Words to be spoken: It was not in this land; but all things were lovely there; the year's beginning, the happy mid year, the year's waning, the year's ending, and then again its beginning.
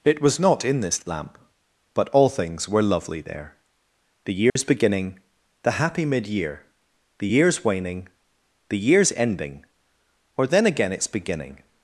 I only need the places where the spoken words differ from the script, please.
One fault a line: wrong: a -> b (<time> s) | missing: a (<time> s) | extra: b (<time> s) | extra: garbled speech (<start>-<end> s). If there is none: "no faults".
wrong: land -> lamp (1.1 s)
wrong: and -> or (10.4 s)